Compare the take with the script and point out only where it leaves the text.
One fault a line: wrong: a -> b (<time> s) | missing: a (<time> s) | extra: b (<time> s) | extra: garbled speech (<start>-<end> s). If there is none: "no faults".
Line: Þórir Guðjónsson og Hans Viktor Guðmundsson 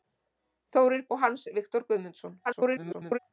missing: Guðjónsson (1.0 s)
extra: garbled speech (2.5-3.2 s)